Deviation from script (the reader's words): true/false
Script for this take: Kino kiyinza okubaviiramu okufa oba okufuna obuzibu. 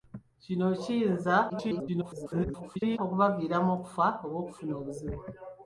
true